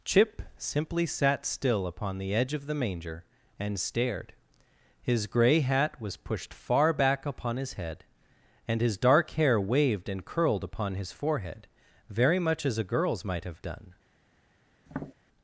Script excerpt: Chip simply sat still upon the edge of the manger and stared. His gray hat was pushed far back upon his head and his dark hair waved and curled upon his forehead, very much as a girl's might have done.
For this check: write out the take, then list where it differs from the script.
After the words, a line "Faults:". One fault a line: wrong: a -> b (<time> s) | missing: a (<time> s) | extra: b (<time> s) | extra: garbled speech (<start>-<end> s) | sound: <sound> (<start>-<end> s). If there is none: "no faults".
Chip simply sat still upon the edge of the manger and stared. His gray hat was pushed far back upon his head and his dark hair waved and curled upon his forehead, very much as a girl's might have done.
Faults:
sound: tap (14.9-15.1 s)